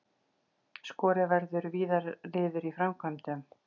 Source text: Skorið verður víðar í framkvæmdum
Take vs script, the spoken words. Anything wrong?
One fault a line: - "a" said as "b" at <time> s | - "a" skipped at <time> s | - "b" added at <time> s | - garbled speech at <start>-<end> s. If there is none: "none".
- "niður" added at 2.4 s